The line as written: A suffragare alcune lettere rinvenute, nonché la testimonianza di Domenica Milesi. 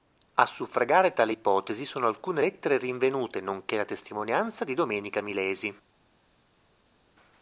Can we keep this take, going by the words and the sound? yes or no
no